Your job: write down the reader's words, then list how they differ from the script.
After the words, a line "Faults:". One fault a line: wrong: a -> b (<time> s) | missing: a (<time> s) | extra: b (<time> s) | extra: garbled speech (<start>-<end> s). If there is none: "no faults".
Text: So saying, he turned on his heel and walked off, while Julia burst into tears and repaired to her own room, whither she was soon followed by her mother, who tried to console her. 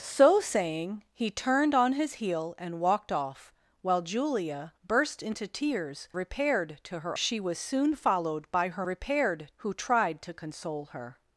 So saying, he turned on his heel and walked off, while Julia burst into tears repaired to her she was soon followed by her repaired, who tried to console her.
Faults:
missing: and (6.1 s)
missing: own room whither (7.2 s)
wrong: mother -> repaired (8.8 s)